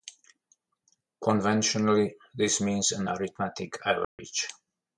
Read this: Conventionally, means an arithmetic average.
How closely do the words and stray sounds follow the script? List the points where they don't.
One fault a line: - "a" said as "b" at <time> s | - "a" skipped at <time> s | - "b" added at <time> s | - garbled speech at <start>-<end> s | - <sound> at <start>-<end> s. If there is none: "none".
- "this" added at 2.3 s
- dropout at 4.0-4.2 s